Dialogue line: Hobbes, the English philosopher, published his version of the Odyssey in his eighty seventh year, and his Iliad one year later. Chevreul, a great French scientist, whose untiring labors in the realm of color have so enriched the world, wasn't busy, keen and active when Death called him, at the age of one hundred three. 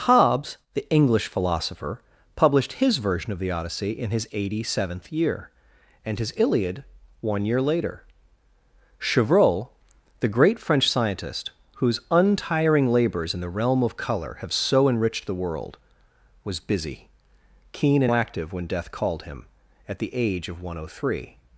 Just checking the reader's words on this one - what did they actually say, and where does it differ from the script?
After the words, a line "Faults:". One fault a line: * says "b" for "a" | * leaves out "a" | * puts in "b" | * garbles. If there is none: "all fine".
Hobbes, the English philosopher, published his version of the Odyssey in his eighty seventh year, and his Iliad one year later. Chevreul, the great French scientist, whose untiring labors in the realm of color have so enriched the world, was busy, keen and active when Death called him, at the age of one hundred three.
Faults:
* says "the" for "a"
* says "was" for "wasn't"